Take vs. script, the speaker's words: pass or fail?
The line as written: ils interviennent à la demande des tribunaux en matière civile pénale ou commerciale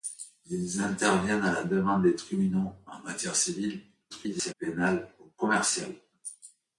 fail